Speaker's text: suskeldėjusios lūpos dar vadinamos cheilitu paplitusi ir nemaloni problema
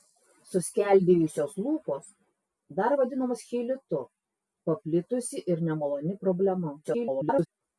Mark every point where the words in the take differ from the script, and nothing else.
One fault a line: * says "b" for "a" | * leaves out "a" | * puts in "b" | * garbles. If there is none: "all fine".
* garbles